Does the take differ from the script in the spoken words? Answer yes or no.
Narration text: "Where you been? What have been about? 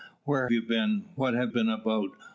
no